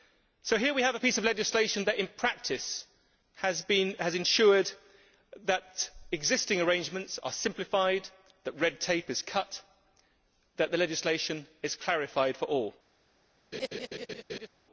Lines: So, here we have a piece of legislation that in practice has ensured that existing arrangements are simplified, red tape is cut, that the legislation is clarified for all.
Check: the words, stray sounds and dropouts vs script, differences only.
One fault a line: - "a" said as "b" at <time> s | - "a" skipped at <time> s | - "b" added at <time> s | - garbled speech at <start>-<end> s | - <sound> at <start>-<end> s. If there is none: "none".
- "that" added at 8.4 s
- laugh at 13.5-14.5 s